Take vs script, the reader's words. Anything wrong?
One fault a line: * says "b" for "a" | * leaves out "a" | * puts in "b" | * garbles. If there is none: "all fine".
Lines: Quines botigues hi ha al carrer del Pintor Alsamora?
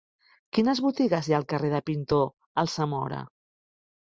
all fine